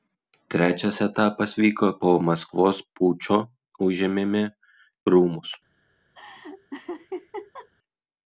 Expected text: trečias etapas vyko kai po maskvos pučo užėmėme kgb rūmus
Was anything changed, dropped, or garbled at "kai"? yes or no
yes